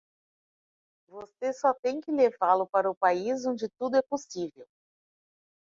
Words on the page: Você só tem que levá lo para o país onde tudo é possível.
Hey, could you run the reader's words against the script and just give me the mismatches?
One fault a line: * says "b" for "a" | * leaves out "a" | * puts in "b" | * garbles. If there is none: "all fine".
all fine